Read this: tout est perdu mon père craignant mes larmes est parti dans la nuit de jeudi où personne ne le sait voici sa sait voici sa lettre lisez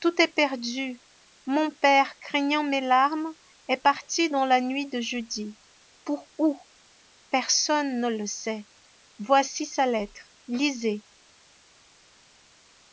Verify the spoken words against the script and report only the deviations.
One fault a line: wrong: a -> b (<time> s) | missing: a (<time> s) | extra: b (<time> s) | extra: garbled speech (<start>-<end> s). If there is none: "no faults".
extra: pour (6.0 s)
missing: sait voici sa (9.9 s)